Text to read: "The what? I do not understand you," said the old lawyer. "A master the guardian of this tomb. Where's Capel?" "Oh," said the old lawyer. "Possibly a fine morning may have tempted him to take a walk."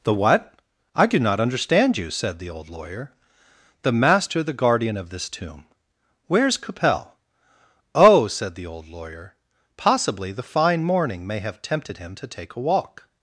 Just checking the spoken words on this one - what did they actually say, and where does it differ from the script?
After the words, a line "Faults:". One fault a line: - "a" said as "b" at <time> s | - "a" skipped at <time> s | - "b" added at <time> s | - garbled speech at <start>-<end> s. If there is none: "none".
"The what? I do not understand you," said the old lawyer. "The master the guardian of this tomb. Where's Capel?" "Oh," said the old lawyer. "Possibly the fine morning may have tempted him to take a walk."
Faults:
- "A" said as "The" at 3.8 s
- "a" said as "the" at 10.3 s